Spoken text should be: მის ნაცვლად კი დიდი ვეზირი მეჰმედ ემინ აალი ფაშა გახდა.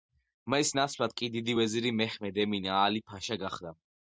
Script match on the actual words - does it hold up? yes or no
yes